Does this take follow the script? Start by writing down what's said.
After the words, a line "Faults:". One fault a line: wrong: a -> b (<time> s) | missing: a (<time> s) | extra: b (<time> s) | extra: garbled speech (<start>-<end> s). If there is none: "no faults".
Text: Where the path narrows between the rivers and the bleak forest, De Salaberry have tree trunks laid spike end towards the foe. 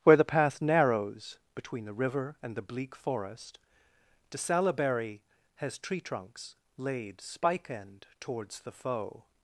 Where the path narrows between the river and the bleak forest, De Salaberry has tree trunks laid spike end towards the foe.
Faults:
wrong: rivers -> river (1.9 s)
wrong: have -> has (5.6 s)